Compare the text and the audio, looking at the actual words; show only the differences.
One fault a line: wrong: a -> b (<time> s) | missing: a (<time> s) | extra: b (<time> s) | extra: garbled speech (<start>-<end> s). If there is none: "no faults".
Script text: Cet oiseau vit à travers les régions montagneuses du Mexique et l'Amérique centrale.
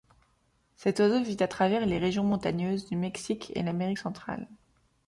no faults